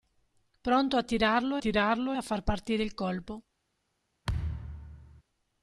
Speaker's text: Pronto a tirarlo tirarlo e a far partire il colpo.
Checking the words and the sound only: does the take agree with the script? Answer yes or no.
no